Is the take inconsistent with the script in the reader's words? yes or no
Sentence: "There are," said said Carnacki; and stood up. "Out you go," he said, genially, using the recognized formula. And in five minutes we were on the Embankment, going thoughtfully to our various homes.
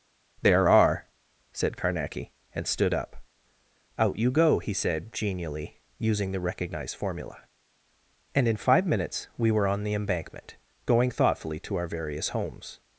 yes